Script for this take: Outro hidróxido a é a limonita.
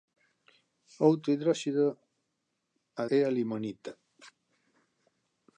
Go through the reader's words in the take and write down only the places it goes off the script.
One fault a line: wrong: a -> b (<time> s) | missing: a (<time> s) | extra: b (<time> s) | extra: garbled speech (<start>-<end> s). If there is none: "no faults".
no faults